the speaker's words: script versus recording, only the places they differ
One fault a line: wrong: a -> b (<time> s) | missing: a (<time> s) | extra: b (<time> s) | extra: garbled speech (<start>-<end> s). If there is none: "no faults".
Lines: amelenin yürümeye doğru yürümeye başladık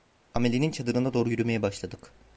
wrong: yürümeye -> çadırına (0.7 s)